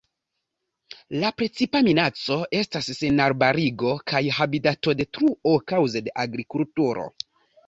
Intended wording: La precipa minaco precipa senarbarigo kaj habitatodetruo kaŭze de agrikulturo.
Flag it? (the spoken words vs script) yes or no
yes